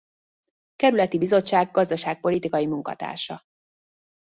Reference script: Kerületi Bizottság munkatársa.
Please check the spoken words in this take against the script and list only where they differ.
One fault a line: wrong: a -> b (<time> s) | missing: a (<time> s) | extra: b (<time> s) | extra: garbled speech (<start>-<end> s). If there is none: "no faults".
extra: gazdaságpolitikai (1.7 s)